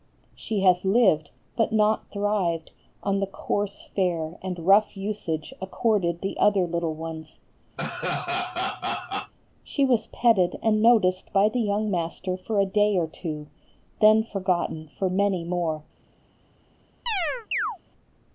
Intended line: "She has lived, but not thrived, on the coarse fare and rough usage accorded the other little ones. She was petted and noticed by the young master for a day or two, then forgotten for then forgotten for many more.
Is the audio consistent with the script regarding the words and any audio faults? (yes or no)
no